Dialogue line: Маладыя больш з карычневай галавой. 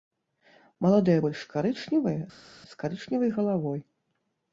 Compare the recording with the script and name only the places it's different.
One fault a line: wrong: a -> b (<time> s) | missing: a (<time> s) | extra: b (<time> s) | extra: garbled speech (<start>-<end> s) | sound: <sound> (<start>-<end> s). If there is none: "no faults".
extra: карычневыя (1.5 s)